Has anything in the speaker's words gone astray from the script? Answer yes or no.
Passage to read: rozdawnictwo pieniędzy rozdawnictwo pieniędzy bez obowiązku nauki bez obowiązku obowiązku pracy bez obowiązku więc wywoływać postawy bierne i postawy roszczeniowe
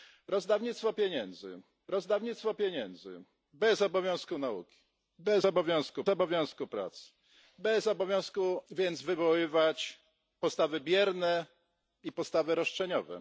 no